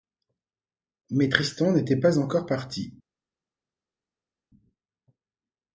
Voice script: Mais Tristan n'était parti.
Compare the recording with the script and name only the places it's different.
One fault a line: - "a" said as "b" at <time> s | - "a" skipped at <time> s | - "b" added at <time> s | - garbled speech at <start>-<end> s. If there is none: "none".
- "pas encore" added at 2.0 s